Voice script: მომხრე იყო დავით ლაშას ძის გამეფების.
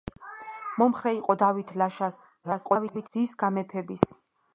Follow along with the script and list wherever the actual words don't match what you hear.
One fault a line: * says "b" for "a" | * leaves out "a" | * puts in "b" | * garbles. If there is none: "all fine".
* garbles